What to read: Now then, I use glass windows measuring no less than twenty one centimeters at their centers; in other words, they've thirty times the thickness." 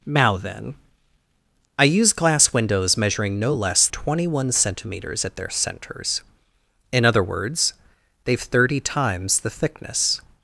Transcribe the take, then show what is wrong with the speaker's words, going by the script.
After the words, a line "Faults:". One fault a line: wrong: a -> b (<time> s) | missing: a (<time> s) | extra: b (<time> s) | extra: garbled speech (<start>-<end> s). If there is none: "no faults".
Now then, I use glass windows measuring no less twenty one centimeters at their centers; in other words, they've thirty times the thickness."
Faults:
missing: than (3.9 s)